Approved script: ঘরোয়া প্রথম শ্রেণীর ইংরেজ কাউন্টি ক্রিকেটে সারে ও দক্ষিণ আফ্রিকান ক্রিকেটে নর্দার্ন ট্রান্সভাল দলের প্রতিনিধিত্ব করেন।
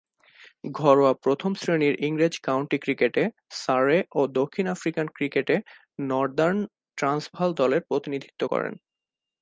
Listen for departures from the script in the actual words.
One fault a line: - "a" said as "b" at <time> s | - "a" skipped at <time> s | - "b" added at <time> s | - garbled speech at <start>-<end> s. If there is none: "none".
none